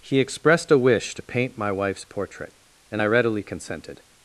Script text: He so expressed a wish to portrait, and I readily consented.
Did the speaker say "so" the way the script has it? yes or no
no